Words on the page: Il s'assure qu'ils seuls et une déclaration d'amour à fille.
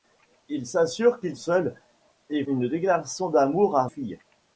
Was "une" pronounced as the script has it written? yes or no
yes